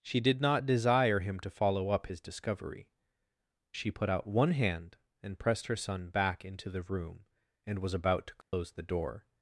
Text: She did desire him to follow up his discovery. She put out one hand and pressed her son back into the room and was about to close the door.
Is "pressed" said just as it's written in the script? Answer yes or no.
yes